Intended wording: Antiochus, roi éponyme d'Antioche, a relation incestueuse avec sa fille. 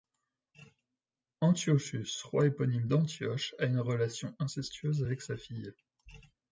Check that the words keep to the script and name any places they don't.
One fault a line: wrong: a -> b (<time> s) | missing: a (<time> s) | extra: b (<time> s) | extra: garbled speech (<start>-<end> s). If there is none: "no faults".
extra: une (3.6 s)